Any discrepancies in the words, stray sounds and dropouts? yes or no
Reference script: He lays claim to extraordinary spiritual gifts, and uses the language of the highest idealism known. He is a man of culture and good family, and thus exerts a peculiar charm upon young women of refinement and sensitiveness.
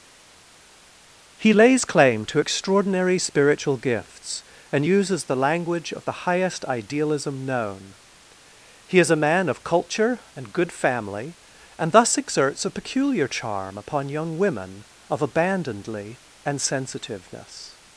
yes